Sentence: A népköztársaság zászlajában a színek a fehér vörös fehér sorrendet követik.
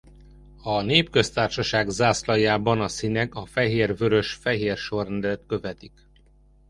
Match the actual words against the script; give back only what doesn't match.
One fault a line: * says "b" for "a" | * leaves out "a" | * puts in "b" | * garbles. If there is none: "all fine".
all fine